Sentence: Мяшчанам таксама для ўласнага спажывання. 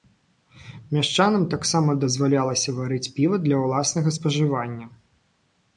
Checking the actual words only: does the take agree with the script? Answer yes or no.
no